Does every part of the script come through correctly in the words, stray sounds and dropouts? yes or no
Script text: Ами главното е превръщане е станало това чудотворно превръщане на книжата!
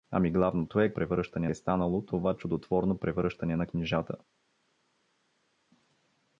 yes